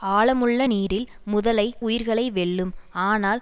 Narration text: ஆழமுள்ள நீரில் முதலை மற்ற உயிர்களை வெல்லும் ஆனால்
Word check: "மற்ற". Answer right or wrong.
wrong